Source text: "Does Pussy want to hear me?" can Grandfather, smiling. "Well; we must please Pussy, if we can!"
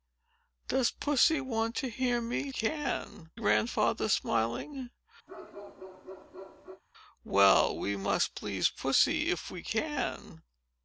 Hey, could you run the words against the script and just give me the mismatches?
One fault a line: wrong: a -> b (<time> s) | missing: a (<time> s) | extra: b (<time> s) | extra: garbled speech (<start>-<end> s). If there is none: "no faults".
no faults